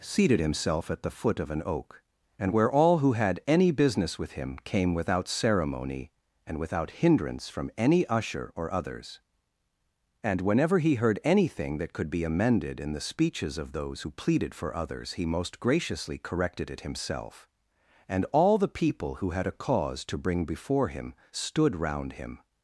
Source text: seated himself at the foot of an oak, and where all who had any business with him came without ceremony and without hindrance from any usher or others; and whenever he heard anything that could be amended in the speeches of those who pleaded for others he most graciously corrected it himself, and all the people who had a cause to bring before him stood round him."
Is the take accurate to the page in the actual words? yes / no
yes